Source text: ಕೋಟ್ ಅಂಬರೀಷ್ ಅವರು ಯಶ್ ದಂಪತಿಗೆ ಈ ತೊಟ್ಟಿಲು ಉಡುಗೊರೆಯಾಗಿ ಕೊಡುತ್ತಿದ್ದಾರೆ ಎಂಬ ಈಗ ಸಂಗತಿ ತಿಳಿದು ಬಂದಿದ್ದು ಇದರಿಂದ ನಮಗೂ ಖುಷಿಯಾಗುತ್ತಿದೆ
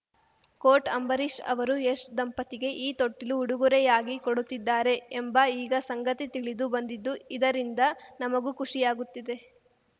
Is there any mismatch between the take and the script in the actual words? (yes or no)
no